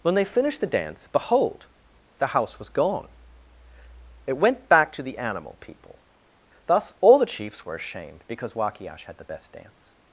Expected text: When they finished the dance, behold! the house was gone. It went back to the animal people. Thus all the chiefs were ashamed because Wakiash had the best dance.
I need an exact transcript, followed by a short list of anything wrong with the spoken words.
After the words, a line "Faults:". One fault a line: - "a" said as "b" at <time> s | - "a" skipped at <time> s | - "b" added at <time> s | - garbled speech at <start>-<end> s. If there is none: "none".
When they finished the dance, behold! the house was gone. It went back to the animal people. Thus all the chiefs were ashamed because Wakiash had the best dance.
Faults:
none